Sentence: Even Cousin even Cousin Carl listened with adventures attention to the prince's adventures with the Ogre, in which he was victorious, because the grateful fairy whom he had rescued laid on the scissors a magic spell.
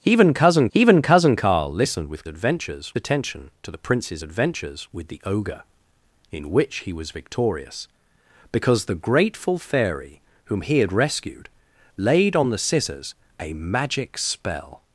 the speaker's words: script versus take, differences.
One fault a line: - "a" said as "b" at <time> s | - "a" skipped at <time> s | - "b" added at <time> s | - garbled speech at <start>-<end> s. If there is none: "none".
none